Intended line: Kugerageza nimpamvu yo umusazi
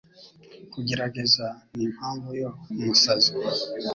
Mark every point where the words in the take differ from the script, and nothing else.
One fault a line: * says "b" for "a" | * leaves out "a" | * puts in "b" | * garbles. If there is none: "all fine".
all fine